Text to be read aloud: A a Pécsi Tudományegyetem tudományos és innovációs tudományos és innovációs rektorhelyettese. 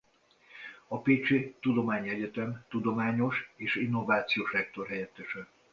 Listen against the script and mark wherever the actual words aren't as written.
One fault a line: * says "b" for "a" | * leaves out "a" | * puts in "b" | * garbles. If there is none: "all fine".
* leaves out "a"
* leaves out "tudományos és innovációs"